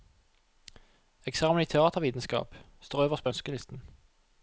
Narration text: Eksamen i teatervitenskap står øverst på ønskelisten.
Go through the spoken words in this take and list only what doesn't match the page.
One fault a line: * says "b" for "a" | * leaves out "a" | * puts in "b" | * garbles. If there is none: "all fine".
all fine